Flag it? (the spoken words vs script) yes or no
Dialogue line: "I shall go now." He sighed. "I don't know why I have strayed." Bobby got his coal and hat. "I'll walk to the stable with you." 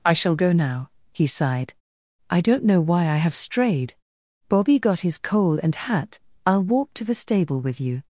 no